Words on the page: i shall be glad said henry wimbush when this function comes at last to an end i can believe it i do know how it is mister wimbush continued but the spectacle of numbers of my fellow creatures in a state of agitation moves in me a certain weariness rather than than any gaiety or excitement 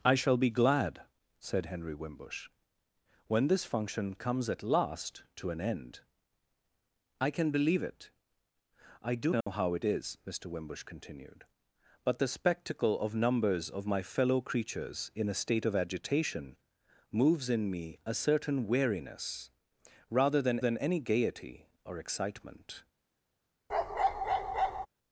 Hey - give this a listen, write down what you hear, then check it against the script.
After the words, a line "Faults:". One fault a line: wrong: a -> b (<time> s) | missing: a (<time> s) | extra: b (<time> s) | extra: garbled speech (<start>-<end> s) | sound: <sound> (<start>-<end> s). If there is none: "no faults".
i shall be glad said henry wimbush when this function comes at last to an end i can believe it i do know how it is mister wimbush continued but the spectacle of numbers of my fellow creatures in a state of agitation moves in me a certain weariness rather than than any gaiety or excitement
Faults:
sound: dropout (9.4-9.5 s)
sound: bark (23.7-24.9 s)